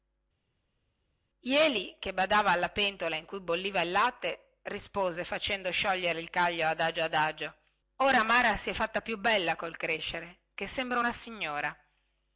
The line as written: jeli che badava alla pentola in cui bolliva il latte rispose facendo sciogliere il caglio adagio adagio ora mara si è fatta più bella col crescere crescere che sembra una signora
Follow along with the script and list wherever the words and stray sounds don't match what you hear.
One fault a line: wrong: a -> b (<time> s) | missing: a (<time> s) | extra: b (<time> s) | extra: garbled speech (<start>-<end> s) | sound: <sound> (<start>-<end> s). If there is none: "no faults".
missing: crescere (10.4 s)